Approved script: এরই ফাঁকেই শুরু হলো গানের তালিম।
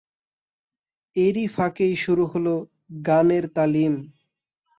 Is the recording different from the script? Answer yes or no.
no